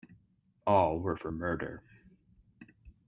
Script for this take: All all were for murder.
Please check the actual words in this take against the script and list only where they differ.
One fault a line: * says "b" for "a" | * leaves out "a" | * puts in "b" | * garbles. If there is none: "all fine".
* leaves out "all"